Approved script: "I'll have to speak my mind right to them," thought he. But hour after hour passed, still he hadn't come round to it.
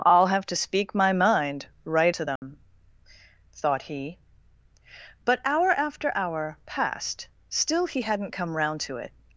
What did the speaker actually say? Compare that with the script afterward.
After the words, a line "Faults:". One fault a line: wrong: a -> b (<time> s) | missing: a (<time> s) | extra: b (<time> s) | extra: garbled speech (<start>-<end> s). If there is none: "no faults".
"I'll have to speak my mind right to them," thought he. But hour after hour passed, still he hadn't come round to it.
Faults:
no faults